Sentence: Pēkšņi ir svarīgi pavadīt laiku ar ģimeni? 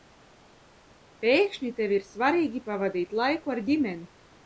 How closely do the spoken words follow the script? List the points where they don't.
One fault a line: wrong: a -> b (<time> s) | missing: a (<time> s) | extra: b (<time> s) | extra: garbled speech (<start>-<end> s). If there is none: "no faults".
extra: tev (1.8 s)